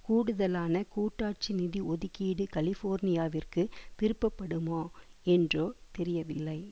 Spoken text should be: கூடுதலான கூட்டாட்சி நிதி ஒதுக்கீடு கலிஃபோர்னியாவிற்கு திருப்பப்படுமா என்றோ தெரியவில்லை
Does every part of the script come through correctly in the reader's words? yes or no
yes